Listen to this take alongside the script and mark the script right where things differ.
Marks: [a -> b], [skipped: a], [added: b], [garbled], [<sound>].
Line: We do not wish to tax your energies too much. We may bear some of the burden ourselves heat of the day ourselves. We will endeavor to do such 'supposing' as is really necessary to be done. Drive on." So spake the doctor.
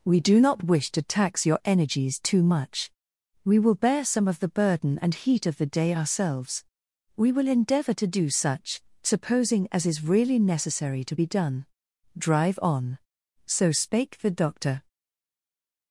We do not wish to tax your energies too much. We [may -> will] bear some of the burden [ourselves -> and] heat of the day ourselves. We will endeavor to do such 'supposing' as is really necessary to be done. Drive on." So spake the doctor.